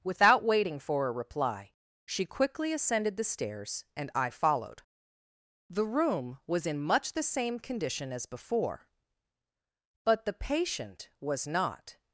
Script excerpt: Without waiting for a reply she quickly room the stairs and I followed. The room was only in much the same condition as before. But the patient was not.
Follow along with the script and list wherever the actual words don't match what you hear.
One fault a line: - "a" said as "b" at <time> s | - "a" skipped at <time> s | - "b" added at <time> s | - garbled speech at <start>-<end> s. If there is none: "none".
- "room" said as "ascended" at 2.7 s
- "only" skipped at 6.7 s